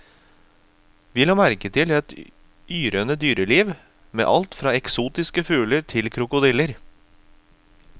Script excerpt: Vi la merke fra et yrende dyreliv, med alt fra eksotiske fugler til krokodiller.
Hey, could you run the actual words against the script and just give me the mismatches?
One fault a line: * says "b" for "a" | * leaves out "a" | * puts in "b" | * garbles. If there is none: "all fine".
* says "til" for "fra"